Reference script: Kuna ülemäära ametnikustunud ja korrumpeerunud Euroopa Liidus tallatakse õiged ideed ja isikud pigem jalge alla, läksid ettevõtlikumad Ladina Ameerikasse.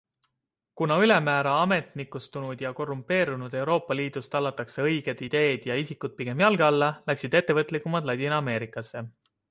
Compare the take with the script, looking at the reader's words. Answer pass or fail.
pass